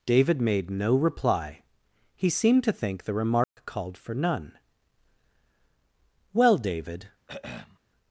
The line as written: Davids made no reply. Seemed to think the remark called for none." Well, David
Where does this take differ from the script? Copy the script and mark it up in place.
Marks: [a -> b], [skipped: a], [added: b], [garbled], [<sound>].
[Davids -> David] made no reply. [added: He] Seemed to think the remark [dropout] called for none." Well, David [throat clearing]